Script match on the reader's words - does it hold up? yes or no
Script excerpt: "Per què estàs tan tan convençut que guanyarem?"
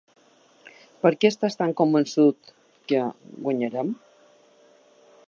no